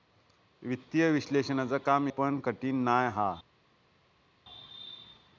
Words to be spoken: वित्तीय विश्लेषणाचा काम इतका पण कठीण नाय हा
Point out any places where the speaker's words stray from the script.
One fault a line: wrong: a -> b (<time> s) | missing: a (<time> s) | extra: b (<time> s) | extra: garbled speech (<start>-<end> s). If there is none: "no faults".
missing: इतका (2.1 s)